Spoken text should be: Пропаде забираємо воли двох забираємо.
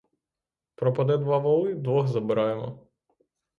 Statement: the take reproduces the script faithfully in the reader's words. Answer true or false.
false